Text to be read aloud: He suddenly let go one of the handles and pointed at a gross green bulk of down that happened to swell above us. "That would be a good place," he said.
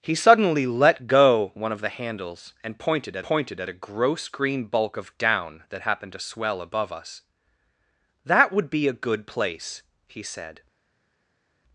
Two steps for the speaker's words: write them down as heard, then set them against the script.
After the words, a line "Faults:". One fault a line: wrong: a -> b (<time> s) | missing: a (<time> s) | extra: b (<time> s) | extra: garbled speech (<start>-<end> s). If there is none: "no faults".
He suddenly let go one of the handles and pointed at pointed at a gross green bulk of down that happened to swell above us. "That would be a good place," he said.
Faults:
extra: pointed at (3.2 s)